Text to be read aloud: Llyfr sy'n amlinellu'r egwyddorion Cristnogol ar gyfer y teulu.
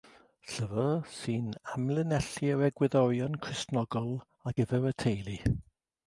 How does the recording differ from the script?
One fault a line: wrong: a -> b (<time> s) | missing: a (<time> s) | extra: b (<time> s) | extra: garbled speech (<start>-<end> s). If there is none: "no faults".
no faults